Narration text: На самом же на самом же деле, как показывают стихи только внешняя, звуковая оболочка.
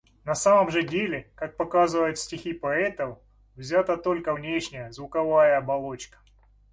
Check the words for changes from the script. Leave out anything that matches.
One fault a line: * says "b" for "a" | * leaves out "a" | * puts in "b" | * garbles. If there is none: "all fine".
* leaves out "на самом же"
* puts in "поэтов взята"